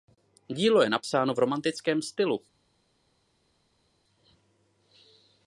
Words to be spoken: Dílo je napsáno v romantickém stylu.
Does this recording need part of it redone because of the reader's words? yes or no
no